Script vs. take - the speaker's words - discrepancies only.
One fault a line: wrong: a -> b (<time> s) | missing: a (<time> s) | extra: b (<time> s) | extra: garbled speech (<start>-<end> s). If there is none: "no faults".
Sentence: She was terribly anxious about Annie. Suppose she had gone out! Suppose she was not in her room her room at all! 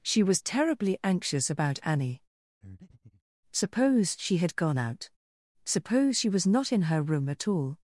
missing: her room (7.3 s)